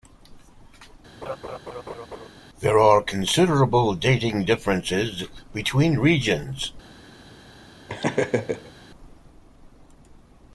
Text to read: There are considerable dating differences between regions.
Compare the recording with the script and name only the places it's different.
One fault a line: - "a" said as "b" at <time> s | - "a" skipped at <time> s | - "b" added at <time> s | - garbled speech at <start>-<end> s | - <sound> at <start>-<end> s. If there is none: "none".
- laugh at 1.2-2.3 s
- laugh at 7.9-8.7 s